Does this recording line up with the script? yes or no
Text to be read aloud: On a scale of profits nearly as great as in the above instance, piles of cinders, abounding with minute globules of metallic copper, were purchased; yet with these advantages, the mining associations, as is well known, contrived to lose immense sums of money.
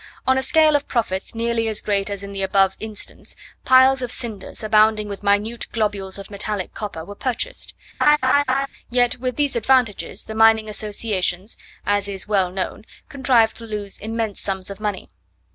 yes